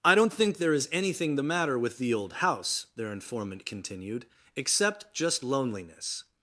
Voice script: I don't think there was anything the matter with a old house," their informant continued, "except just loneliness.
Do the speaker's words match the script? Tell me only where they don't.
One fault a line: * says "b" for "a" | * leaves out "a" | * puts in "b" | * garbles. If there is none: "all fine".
* says "is" for "was"
* says "the" for "a"